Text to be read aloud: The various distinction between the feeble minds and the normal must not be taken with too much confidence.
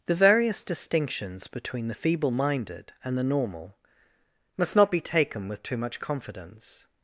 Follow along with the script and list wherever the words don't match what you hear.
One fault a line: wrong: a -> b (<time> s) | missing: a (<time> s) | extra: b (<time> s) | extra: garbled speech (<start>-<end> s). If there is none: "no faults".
wrong: distinction -> distinctions (0.6 s)
wrong: minds -> minded (2.3 s)